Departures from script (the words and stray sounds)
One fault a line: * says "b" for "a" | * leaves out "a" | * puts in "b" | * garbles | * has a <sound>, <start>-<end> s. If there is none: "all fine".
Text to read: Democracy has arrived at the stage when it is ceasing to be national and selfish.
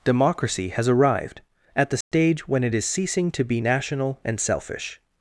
* has a dropout, 2.0-2.1 s